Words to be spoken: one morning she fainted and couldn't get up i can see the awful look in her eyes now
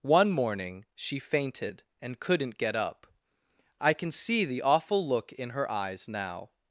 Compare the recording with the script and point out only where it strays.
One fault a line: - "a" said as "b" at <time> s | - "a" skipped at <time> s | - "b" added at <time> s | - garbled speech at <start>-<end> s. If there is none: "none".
none